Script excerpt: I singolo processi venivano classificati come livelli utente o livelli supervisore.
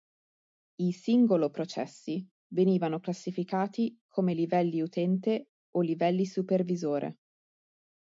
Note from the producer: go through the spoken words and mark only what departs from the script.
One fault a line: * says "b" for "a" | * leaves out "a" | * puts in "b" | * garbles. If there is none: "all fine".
all fine